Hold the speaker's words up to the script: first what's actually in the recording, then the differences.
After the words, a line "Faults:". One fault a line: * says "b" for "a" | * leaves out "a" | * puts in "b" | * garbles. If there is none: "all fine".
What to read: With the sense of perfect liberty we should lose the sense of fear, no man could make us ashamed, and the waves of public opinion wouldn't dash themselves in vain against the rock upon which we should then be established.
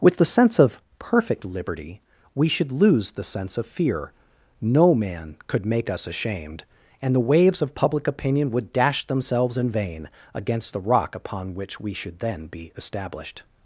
With the sense of perfect liberty we should lose the sense of fear, no man could make us ashamed, and the waves of public opinion would dash themselves in vain against the rock upon which we should then be established.
Faults:
* says "would" for "wouldn't"